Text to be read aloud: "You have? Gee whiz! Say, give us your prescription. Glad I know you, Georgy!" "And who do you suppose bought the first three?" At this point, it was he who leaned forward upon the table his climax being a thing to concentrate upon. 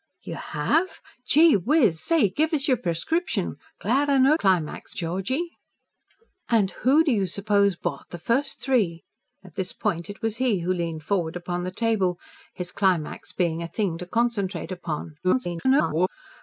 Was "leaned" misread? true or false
false